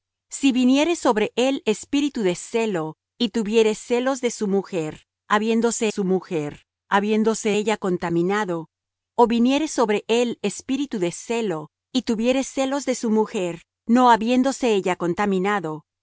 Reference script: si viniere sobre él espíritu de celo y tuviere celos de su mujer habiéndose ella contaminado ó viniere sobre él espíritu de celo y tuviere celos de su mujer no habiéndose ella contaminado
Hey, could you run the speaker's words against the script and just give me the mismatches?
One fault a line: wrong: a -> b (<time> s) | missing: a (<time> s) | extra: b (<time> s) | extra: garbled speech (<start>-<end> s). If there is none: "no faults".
extra: su mujer habiéndose (5.9 s)